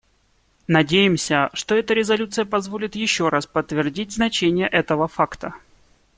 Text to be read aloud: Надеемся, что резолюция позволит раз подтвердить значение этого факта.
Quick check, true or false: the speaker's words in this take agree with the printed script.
false